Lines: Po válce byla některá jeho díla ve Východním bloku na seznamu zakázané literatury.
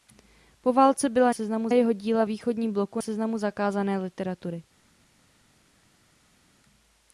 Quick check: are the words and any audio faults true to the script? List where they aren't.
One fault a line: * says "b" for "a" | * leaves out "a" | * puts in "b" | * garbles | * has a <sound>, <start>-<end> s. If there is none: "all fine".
* says "seznamu" for "některá"
* leaves out "ve"
* leaves out "na"